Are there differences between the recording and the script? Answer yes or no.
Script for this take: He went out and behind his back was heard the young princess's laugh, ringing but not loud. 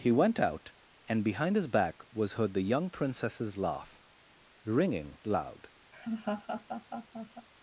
yes